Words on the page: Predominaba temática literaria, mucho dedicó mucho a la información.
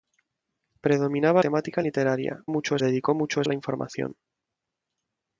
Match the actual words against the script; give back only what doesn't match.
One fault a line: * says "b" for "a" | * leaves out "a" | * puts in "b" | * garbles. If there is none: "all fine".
all fine